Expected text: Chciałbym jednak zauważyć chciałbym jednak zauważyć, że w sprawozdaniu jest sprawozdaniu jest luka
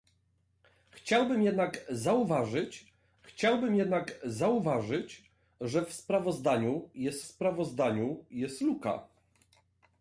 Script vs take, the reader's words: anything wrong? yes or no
no